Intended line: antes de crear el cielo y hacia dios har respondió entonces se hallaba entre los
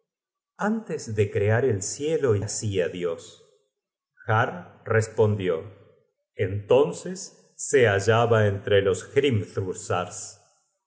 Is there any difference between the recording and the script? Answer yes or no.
no